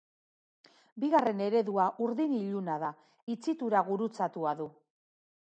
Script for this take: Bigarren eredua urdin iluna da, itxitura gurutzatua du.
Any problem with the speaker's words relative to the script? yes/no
no